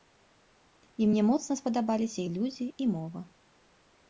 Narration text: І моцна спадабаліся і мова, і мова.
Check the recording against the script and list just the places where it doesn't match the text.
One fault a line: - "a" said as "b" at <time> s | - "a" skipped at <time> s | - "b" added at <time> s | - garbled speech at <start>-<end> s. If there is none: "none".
- "мне" added at 1.1 s
- "мова" said as "людзі" at 2.4 s